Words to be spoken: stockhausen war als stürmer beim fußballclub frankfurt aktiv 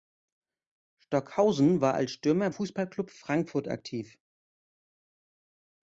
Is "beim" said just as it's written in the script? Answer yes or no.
no